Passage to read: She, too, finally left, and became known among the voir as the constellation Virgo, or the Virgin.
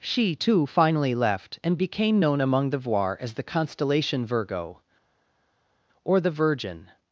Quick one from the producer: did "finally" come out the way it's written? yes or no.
yes